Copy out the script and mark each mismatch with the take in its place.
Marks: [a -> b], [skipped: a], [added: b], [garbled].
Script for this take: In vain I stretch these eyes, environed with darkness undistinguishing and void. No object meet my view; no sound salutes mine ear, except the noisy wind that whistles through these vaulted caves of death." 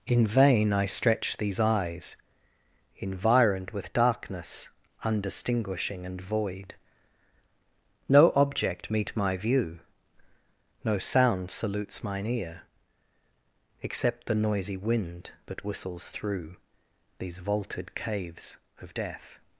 In vain I stretch these eyes, environed with darkness undistinguishing and void. No object meet my view; no sound salutes mine ear, except the noisy wind that whistles through these vaulted caves of death."